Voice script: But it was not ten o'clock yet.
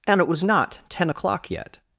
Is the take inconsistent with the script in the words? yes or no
yes